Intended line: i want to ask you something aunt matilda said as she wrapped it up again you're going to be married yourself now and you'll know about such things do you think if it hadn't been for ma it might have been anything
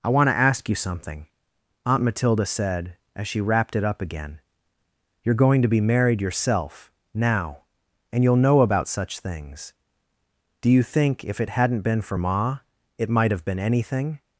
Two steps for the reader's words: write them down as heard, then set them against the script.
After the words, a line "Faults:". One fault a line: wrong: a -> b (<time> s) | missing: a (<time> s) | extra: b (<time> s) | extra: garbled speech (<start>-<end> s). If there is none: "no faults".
i want to ask you something aunt matilda said as she wrapped it up again you're going to be married yourself now and you'll know about such things do you think if it hadn't been for ma it might have been anything
Faults:
no faults